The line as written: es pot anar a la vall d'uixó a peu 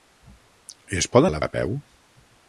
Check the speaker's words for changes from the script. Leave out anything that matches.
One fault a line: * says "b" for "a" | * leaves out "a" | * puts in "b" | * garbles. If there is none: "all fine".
* leaves out "anar"
* leaves out "vall d'uixó"